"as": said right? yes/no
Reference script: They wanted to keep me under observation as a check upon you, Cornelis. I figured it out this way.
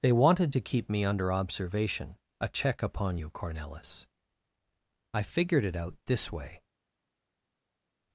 no